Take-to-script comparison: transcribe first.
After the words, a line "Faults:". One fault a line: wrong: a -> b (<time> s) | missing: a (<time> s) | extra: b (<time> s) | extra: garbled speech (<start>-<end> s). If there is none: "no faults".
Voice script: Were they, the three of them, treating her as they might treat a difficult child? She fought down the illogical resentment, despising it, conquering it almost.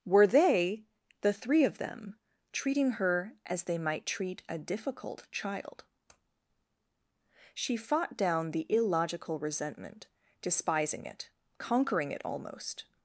Were they, the three of them, treating her as they might treat a difficult child? She fought down the illogical resentment, despising it, conquering it almost.
Faults:
no faults